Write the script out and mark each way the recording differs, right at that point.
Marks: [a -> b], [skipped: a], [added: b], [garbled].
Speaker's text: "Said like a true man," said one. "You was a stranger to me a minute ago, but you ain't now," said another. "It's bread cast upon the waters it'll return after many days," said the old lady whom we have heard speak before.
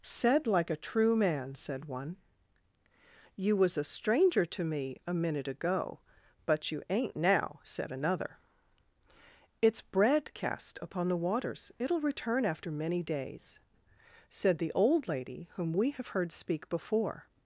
"Said like a true man," said one. "You was a stranger to me a minute ago, but you ain't now," said another. "It's bread cast upon the waters it'll return after many days," said the old lady whom we have heard speak before.